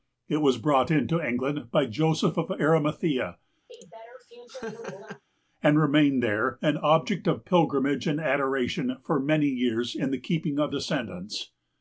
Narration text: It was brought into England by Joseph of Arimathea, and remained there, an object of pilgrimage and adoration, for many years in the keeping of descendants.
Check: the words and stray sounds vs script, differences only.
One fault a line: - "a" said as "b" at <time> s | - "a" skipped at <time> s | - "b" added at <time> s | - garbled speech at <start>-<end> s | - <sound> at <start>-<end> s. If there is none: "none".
- laugh at 3.7-5.2 s